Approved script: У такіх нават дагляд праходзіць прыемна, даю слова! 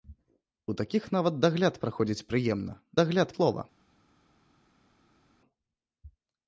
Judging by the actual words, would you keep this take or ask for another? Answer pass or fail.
fail